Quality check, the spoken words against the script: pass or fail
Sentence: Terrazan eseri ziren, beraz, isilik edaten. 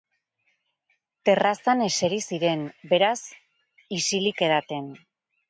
pass